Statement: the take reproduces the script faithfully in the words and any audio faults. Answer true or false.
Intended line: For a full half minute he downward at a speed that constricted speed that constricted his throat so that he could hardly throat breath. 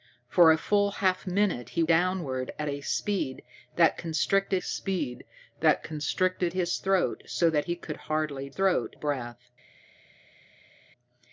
true